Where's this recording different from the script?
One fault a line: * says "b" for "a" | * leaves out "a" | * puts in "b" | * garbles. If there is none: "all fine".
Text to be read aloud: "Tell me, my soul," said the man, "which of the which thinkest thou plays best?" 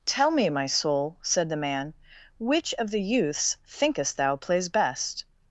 * says "youths" for "which"